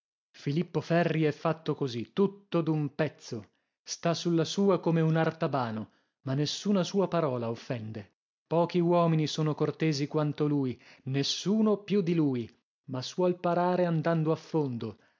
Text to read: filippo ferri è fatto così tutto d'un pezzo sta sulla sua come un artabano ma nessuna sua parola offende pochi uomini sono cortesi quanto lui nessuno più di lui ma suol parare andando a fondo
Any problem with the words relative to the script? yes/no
no